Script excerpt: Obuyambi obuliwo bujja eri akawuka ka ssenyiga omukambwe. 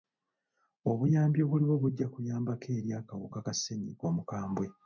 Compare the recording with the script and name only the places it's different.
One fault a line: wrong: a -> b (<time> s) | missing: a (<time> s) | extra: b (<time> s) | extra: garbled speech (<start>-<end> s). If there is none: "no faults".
extra: kuyambako (2.1 s)